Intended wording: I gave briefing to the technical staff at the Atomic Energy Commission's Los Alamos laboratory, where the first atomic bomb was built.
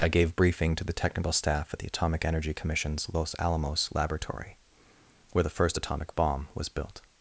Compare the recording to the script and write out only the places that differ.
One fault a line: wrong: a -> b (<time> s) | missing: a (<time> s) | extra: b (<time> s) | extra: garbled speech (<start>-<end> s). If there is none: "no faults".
no faults